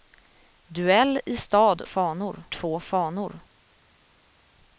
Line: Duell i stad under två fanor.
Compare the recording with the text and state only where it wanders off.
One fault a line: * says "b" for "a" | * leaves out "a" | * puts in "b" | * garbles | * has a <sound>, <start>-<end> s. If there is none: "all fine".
* says "fanor" for "under"